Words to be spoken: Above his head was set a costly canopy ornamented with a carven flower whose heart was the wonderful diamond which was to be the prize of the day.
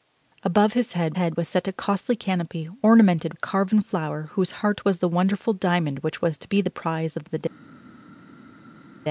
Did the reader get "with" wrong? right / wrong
wrong